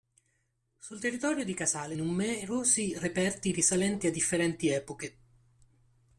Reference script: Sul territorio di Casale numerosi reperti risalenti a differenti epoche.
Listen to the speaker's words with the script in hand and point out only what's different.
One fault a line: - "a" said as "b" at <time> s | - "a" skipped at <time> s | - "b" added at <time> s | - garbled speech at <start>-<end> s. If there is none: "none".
none